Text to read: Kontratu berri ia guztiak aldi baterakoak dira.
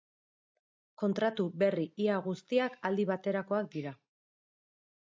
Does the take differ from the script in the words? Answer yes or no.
no